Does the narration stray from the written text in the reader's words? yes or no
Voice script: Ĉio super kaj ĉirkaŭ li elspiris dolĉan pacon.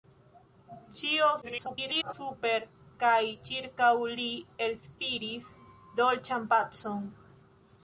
yes